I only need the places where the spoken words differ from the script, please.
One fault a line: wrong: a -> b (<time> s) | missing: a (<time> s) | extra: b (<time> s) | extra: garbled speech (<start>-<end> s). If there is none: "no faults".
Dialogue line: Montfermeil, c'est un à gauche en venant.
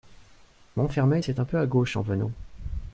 extra: peu (1.4 s)